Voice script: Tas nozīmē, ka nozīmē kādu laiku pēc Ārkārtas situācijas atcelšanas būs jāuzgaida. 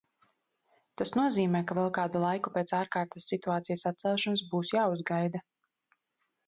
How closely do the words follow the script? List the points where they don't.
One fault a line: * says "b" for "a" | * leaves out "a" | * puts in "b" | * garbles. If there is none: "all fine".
* says "vēl" for "nozīmē"